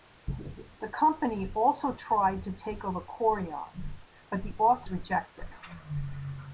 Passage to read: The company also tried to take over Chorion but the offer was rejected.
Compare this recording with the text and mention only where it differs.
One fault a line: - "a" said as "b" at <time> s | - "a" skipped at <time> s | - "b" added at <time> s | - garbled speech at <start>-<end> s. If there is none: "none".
- "was" skipped at 4.9 s